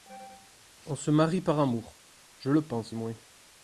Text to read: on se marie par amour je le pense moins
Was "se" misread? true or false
false